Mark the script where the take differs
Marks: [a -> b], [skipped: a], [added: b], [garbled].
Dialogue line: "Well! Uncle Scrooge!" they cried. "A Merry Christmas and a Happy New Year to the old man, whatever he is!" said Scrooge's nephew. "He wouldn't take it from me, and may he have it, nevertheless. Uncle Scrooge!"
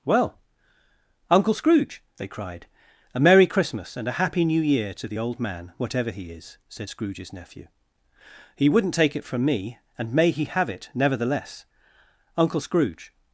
"Well! Uncle Scrooge!" they cried. "A Merry Christmas and a Happy New Year to the old man, whatever he is!" said Scrooge's nephew. "He wouldn't take it from me, and may he have it, nevertheless. Uncle Scrooge!"